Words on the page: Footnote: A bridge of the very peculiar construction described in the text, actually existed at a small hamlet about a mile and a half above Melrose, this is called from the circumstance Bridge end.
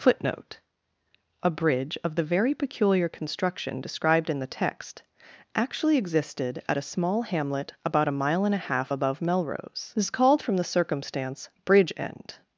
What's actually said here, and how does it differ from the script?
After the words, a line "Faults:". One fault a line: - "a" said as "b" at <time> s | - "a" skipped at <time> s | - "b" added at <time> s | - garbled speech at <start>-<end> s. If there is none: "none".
Footnote: A bridge of the very peculiar construction described in the text, actually existed at a small hamlet about a mile and a half above Melrose, this is called from the circumstance Bridge end.
Faults:
none